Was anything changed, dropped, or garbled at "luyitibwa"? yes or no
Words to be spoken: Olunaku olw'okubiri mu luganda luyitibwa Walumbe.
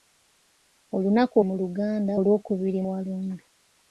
yes